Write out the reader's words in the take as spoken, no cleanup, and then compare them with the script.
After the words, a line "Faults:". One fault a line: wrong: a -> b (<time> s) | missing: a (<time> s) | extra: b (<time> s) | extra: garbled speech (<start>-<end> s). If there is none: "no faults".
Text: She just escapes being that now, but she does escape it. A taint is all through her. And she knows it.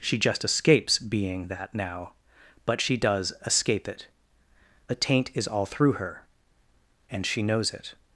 She just escapes being that now, but she does escape it. A taint is all through her. And she knows it.
Faults:
no faults